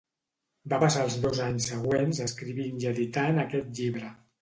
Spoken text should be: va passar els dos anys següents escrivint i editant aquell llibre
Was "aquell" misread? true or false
true